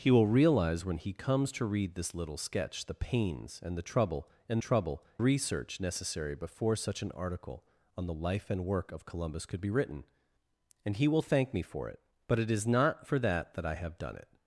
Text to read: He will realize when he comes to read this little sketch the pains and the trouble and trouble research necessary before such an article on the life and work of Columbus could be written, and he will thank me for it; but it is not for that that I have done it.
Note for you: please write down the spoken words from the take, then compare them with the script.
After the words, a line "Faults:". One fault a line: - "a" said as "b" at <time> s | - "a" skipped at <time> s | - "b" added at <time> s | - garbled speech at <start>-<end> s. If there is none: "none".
He will realize when he comes to read this little sketch the pains and the trouble and trouble research necessary before such an article on the life and work of Columbus could be written, and he will thank me for it; but it is not for that that I have done it.
Faults:
none